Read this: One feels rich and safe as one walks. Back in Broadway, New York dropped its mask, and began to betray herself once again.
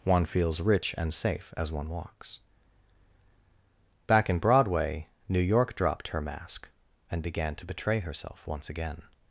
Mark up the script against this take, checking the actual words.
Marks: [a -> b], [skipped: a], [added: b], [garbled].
One feels rich and safe as one walks. Back in Broadway, New York dropped [its -> her] mask, and began to betray herself once again.